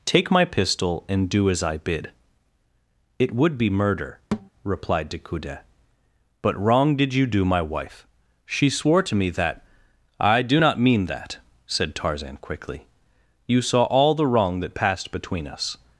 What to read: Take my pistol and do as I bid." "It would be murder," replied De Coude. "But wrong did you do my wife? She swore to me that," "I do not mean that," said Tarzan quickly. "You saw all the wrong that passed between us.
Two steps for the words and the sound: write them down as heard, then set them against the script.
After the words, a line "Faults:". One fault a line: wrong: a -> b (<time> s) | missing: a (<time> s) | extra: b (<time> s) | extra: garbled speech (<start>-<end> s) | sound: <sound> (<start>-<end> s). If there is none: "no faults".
Take my pistol and do as I bid." "It would be murder," replied De Coude. "But wrong did you do my wife? She swore to me that," "I do not mean that," said Tarzan quickly. "You saw all the wrong that passed between us.
Faults:
sound: thud (4.3-4.5 s)